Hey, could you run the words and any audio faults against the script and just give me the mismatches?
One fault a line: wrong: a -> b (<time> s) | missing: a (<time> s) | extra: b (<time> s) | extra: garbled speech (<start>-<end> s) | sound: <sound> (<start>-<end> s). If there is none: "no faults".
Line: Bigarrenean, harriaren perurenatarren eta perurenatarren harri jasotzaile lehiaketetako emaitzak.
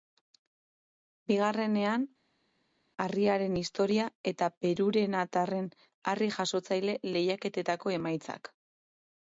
wrong: perurenatarren -> historia (3.6 s)